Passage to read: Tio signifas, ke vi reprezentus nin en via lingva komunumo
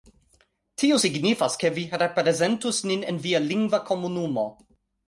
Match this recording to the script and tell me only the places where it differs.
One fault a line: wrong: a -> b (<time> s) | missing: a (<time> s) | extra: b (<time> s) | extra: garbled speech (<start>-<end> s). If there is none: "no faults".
no faults